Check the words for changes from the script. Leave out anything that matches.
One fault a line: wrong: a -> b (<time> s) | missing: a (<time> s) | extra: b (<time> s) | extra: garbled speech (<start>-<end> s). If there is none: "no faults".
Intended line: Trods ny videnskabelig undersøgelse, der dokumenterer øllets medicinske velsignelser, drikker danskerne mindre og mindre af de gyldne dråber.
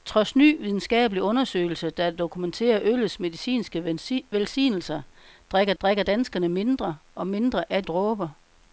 extra: drikker (5.8 s)
missing: de gyldne (7.8 s)